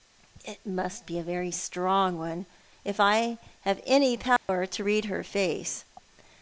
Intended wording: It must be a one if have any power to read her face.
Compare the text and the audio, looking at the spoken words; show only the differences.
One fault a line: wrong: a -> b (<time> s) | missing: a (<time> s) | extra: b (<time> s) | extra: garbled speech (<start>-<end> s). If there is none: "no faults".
extra: very strong (1.2 s)
extra: I (3.0 s)